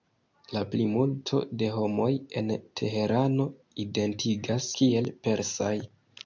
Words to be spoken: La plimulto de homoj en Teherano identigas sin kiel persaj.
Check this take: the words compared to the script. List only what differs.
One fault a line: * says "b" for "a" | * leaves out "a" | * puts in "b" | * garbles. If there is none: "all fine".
* leaves out "sin"